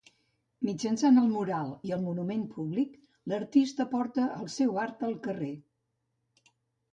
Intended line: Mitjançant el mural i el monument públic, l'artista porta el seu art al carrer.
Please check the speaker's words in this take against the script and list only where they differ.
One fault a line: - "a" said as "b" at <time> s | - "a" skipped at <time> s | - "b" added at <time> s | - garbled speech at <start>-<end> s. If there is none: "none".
none